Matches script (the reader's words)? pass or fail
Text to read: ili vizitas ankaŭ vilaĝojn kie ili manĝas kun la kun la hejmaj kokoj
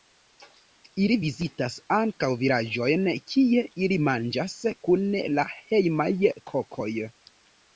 fail